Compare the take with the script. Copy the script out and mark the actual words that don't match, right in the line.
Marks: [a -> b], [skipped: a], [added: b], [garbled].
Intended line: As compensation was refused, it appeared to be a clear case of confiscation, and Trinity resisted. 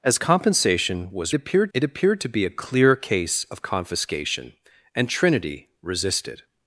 As compensation was [refused, -> appeared] it appeared to be a clear case of confiscation, and Trinity resisted.